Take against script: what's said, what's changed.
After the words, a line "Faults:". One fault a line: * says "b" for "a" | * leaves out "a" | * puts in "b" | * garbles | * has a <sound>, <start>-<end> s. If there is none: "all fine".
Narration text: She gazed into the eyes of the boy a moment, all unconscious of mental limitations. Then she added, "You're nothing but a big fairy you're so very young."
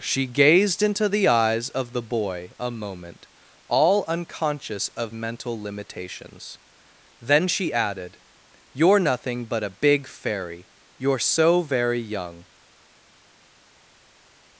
She gazed into the eyes of the boy a moment, all unconscious of mental limitations. Then she added, "You're nothing but a big fairy you're so very young."
Faults:
all fine